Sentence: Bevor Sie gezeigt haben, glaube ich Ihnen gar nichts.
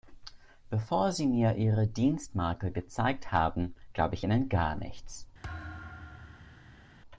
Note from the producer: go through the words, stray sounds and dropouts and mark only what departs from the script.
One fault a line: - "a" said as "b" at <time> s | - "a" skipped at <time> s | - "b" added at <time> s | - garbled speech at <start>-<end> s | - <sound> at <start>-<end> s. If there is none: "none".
- "mir Ihre Dienstmarke" added at 1.3 s
- thud at 5.4-6.9 s